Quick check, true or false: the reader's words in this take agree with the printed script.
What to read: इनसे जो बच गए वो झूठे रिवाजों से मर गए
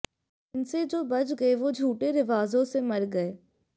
true